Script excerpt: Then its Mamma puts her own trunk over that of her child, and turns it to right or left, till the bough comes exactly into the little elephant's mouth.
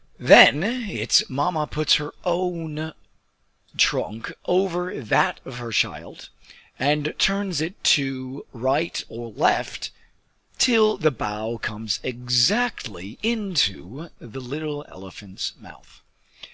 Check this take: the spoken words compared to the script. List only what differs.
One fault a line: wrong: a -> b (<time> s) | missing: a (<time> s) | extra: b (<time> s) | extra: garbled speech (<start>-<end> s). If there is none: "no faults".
no faults